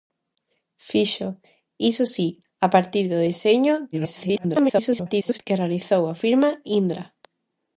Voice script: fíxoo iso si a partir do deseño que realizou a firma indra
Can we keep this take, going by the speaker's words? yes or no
no